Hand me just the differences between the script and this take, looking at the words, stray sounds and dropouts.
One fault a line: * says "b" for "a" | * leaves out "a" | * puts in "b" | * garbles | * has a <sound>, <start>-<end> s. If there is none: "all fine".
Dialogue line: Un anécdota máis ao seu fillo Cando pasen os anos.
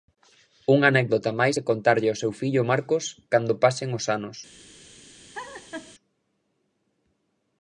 * says "Unha" for "Un"
* puts in "que contarlle"
* puts in "Marcos"
* has a laugh, 5.3-5.9 s